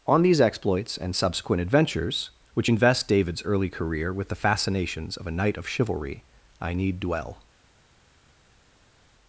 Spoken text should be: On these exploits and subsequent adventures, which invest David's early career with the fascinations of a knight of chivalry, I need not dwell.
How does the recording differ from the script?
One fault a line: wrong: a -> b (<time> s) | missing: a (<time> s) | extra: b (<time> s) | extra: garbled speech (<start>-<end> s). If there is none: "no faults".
missing: not (7.0 s)